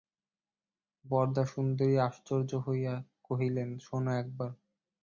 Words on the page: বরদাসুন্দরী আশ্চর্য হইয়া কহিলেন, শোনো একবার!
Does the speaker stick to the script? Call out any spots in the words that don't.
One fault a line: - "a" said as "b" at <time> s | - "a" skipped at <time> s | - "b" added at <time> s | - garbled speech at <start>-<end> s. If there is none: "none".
none